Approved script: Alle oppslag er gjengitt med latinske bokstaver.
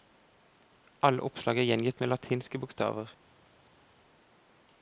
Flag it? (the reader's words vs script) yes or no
no